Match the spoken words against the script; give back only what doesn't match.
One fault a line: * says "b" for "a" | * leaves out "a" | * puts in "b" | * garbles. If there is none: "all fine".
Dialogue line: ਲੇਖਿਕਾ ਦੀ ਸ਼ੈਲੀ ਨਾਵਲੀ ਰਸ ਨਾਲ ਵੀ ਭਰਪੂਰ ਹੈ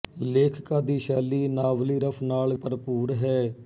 * leaves out "ਵੀ"